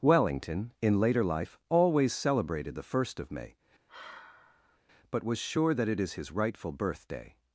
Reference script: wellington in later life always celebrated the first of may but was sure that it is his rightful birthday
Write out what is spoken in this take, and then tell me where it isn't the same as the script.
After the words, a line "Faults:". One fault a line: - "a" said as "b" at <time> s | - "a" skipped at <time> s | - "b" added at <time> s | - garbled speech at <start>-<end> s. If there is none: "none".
wellington in later life always celebrated the first of may but was sure that it is his rightful birthday
Faults:
none